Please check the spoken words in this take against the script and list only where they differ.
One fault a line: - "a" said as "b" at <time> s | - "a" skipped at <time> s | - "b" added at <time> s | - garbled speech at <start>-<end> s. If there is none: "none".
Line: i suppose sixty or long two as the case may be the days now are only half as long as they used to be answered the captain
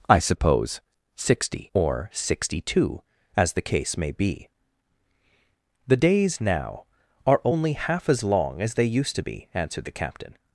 - "long" said as "sixty" at 2.1 s